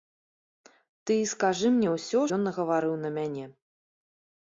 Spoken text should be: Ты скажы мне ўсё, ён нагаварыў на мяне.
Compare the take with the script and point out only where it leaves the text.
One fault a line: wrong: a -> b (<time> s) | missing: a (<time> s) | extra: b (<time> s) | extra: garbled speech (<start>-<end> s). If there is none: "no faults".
no faults